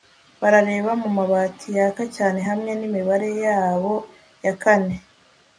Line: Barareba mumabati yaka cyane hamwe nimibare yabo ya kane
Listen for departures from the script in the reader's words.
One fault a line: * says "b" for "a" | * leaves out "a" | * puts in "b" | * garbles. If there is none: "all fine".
all fine